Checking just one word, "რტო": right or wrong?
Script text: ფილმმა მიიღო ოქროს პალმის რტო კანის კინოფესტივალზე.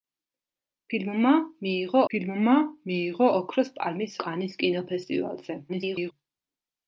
wrong